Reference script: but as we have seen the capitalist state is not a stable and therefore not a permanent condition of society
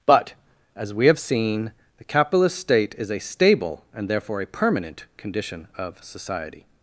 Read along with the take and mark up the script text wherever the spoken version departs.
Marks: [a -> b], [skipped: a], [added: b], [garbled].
but as we have seen the capitalist state is [skipped: not] a stable and therefore [skipped: not] a permanent condition of society